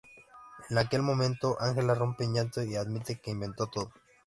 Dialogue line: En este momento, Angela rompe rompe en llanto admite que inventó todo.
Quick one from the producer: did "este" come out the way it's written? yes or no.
no